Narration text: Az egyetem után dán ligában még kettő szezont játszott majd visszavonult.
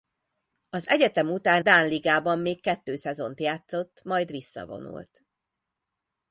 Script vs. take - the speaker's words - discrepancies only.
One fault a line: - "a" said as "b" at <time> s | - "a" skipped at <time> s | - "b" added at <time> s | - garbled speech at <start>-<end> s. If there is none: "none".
none